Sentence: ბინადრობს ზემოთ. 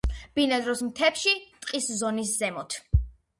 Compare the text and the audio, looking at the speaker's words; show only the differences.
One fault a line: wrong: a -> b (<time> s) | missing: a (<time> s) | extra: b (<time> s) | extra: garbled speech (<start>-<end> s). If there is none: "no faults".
extra: მთებში ტყის ზონის (0.8 s)